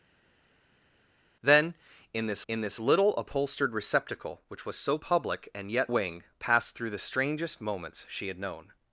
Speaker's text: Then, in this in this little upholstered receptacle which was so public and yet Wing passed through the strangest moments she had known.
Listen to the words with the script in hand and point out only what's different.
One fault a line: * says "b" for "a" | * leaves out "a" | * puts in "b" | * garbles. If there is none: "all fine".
all fine